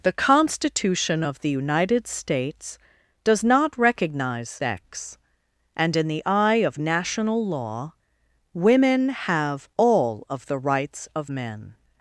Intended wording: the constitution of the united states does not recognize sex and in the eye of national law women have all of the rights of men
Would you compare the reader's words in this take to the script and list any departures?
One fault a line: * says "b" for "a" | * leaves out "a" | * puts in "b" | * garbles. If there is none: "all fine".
all fine